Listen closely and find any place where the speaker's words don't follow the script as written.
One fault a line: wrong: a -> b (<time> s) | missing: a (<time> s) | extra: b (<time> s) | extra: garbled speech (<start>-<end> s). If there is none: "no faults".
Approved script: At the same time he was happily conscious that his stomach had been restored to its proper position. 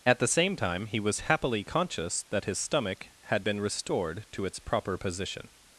no faults